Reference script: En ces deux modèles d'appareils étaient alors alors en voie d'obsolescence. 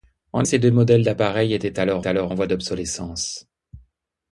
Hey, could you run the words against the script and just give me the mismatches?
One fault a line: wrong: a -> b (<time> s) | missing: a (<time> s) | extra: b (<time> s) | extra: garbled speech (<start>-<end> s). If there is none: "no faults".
no faults